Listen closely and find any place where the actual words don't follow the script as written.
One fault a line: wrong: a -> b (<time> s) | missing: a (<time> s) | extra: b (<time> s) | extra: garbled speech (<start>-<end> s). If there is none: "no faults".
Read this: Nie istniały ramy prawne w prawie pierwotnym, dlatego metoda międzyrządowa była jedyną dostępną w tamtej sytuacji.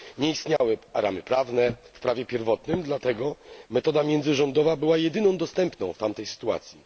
no faults